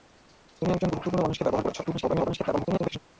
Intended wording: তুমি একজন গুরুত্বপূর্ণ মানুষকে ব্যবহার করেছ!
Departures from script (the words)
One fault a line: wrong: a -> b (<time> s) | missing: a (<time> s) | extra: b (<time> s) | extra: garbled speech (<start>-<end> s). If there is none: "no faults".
extra: garbled speech (1.8-3.0 s)